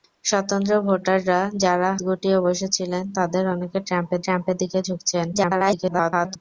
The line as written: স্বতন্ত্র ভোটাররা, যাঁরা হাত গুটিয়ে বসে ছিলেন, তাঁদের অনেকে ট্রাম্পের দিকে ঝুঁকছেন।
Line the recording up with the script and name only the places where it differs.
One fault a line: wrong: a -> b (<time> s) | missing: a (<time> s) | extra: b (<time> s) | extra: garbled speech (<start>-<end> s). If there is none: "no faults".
missing: হাত (1.9 s)
extra: ট্রাম্পের (4.2 s)
extra: garbled speech (5.3-6.4 s)